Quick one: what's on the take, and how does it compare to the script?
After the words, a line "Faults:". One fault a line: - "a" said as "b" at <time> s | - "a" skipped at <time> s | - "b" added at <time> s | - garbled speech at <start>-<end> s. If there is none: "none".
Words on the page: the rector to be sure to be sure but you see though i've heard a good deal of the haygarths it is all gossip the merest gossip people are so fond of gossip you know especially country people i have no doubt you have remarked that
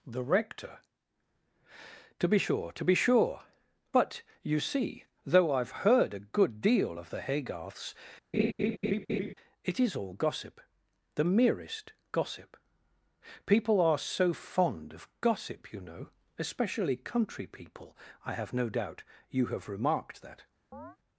the rector to be sure to be sure but you see though i've heard a good deal of the haygarths it is all gossip the merest gossip people are so fond of gossip you know especially country people i have no doubt you have remarked that
Faults:
none